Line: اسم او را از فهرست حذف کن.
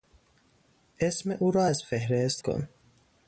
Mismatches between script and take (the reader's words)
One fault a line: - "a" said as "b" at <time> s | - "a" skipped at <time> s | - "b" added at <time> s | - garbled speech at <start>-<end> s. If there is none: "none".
- "حذف" skipped at 2.4 s